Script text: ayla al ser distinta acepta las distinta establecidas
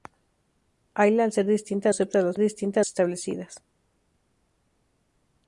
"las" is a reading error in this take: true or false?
false